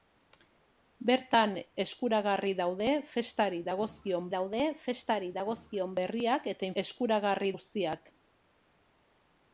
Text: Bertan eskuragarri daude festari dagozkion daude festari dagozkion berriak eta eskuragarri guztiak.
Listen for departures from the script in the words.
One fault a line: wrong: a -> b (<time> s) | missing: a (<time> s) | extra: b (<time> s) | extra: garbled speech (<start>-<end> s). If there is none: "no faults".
no faults